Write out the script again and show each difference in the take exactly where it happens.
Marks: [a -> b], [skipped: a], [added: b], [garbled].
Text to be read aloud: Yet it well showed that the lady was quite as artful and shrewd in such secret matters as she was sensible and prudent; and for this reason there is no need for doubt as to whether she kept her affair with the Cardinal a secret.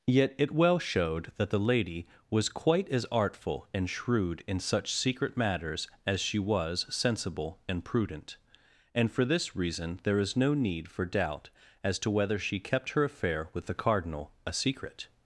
Yet it well showed that the lady was quite as artful and shrewd in such secret matters as she was sensible and prudent; and for this reason there is no need for doubt as to whether she kept her affair with the Cardinal a secret.